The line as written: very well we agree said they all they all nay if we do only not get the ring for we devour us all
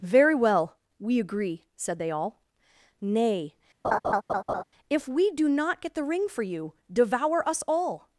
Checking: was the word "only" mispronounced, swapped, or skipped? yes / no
yes